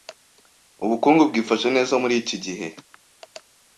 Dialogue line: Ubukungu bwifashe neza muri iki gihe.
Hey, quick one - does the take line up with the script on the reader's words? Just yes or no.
yes